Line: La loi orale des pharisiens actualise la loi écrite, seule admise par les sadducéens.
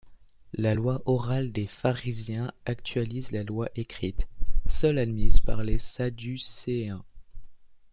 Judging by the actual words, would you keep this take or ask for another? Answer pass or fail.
pass